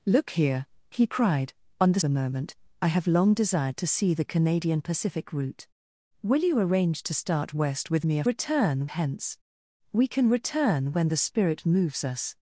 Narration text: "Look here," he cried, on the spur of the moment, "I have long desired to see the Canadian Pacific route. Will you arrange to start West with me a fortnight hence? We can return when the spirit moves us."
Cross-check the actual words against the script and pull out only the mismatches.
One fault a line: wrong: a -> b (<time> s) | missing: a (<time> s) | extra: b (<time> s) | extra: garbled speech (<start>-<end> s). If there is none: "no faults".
missing: spur of (2.0 s)
wrong: fortnight -> return (8.2 s)